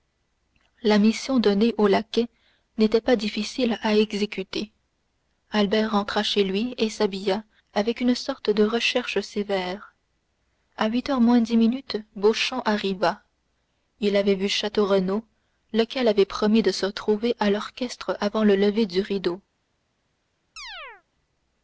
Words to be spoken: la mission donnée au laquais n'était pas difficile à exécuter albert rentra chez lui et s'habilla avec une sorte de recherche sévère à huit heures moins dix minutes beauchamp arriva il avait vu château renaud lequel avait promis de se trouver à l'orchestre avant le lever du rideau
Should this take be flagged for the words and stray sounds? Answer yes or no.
yes